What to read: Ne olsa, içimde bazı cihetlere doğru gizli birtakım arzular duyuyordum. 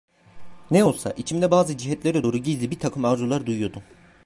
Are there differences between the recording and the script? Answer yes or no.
no